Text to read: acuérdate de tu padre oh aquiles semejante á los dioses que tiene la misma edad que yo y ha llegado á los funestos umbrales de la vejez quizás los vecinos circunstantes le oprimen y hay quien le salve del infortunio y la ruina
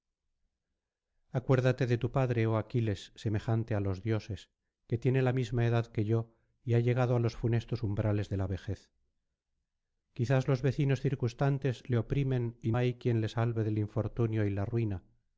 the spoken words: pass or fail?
pass